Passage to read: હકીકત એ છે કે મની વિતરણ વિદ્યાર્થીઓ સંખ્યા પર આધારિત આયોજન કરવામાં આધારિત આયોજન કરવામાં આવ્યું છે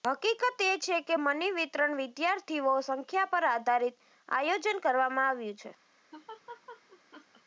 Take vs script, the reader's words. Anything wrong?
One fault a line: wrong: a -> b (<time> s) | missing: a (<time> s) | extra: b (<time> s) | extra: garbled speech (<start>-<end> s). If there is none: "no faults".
missing: આધારિત આયોજન કરવામાં (5.3 s)